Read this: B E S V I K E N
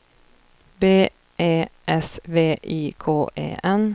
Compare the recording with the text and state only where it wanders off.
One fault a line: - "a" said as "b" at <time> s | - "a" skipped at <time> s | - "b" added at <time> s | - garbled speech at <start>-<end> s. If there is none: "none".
none